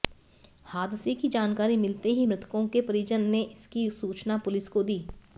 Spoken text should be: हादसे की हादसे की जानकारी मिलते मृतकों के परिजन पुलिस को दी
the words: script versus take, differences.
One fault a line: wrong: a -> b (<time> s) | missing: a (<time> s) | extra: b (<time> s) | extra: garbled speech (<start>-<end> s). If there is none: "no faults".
missing: हादसे की (1.3 s)
extra: ही (2.1 s)
extra: ने इसकी सूचना (3.3 s)